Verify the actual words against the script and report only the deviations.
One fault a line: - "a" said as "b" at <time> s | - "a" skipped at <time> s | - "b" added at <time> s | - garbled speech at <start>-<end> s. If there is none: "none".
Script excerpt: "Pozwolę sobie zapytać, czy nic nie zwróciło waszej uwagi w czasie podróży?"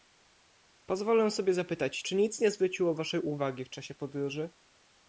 none